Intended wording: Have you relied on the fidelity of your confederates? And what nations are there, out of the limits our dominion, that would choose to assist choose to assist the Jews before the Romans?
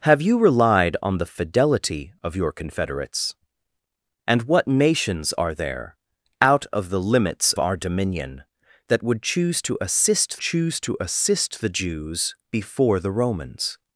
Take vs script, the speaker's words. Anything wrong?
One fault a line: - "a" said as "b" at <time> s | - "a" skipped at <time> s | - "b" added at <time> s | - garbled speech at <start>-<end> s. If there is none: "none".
none